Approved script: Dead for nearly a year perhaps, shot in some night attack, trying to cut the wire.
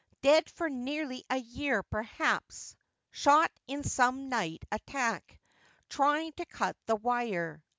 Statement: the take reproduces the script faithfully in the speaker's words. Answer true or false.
true